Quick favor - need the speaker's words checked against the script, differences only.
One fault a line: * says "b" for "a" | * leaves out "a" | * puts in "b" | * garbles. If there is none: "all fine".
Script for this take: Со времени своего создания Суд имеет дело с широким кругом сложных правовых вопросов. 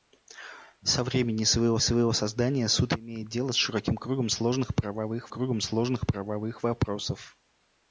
* puts in "своего"
* puts in "кругом сложных правовых"